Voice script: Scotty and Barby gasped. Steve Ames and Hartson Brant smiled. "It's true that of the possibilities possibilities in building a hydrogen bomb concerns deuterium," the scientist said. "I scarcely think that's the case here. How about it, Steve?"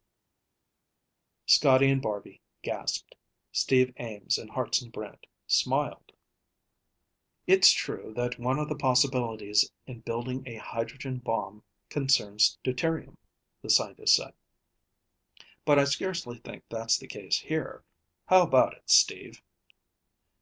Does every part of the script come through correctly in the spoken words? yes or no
no